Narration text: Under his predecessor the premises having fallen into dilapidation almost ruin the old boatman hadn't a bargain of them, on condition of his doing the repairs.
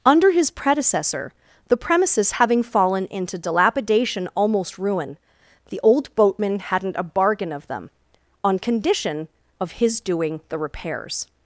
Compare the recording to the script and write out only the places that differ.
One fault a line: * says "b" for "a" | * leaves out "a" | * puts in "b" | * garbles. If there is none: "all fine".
all fine